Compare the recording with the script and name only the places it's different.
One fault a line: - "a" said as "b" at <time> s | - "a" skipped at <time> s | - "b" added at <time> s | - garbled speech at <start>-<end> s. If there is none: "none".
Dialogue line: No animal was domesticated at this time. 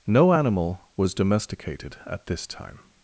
none